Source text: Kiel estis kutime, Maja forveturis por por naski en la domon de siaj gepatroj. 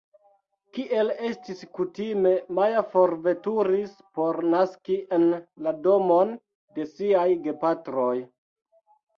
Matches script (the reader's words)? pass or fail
fail